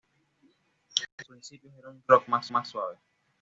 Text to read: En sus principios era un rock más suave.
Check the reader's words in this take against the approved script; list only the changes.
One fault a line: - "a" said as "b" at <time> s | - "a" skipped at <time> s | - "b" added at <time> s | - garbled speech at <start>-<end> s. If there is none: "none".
- "sus" skipped at 1.2 s
- "más" added at 2.5 s